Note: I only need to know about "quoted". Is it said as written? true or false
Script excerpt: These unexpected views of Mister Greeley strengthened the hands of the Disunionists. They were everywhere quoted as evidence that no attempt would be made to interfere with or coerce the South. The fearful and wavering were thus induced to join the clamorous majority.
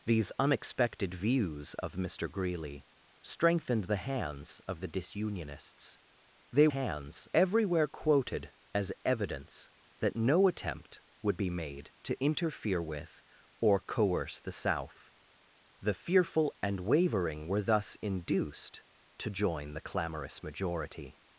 true